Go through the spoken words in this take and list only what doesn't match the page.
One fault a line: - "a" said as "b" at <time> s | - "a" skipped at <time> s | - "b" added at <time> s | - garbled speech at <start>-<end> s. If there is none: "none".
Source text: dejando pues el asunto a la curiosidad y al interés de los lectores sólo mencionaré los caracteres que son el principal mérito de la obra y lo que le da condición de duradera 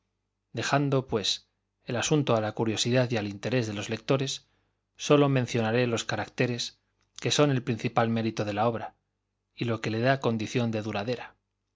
none